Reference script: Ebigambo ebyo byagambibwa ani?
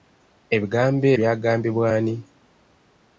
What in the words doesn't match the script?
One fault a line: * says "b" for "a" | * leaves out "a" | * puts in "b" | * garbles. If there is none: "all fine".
* leaves out "ebyo"